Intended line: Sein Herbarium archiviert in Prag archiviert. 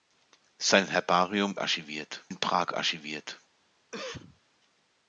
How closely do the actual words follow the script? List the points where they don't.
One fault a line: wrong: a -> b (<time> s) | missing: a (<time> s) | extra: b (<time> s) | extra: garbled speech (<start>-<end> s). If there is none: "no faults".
no faults